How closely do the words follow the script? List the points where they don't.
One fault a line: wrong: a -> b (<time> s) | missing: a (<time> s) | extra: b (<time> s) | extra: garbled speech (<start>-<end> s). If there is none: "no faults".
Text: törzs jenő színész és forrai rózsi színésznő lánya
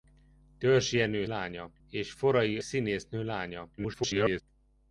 wrong: színész -> lánya (1.2 s)
missing: rózsi (2.6 s)
extra: garbled speech (3.8-4.4 s)